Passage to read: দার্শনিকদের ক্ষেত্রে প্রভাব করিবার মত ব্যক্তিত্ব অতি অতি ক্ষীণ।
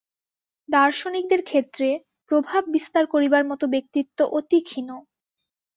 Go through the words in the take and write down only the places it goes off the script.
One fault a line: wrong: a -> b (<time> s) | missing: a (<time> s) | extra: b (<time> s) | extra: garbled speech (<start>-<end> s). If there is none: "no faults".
extra: বিস্তার (2.7 s)
missing: অতি (4.6 s)